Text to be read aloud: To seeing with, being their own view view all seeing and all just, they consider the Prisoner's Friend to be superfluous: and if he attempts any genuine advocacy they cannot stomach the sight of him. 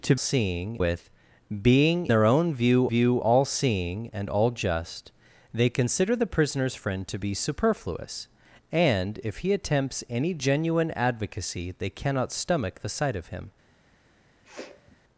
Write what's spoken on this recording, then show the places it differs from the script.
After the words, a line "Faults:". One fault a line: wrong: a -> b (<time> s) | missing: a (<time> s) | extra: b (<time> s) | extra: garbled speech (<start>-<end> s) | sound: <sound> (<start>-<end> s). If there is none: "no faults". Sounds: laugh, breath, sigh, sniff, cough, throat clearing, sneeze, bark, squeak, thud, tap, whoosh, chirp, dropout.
To seeing with, being their own view view all seeing and all just, they consider the Prisoner's Friend to be superfluous: and if he attempts any genuine advocacy they cannot stomach the sight of him.
Faults:
sound: sniff (14.4-15.0 s)